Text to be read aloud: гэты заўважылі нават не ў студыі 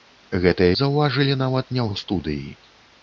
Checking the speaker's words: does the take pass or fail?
pass